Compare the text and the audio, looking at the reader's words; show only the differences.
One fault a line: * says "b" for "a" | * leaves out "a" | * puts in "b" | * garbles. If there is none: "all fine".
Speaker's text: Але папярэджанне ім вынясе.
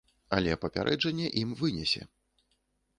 all fine